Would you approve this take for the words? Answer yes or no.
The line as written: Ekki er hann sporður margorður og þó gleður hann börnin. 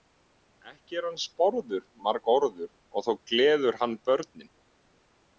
yes